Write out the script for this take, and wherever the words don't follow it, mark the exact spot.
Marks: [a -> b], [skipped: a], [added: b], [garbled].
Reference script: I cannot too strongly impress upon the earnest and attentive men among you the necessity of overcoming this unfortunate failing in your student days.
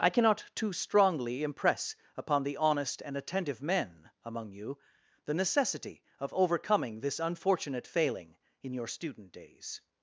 I cannot too strongly impress upon the [earnest -> honest] and attentive men among you the necessity of overcoming this unfortunate failing in your student days.